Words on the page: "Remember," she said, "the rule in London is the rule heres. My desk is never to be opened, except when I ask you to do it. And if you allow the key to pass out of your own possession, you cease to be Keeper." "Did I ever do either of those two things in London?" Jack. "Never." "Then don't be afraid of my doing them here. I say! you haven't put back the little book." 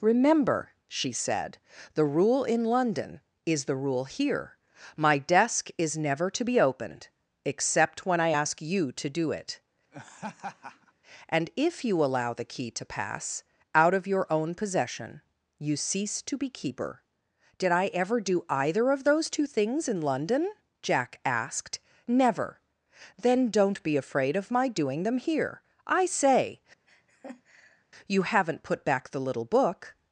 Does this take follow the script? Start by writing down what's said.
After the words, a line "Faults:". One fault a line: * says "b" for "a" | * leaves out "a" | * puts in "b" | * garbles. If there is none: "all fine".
"Remember," she said, "the rule in London is the rule here. My desk is never to be opened, except when I ask you to do it. And if you allow the key to pass out of your own possession, you cease to be Keeper." "Did I ever do either of those two things in London?" Jack asked. "Never." "Then don't be afraid of my doing them here. I say! you haven't put back the little book."
Faults:
* says "here" for "heres"
* puts in "asked"